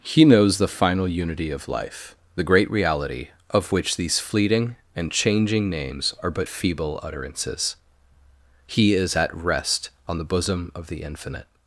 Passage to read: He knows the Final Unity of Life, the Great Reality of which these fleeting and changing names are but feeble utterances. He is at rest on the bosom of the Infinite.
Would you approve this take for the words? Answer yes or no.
yes